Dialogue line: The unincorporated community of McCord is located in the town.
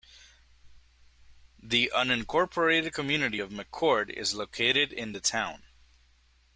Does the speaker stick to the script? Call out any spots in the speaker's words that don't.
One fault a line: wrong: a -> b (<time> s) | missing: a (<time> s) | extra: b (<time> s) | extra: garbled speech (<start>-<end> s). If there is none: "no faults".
no faults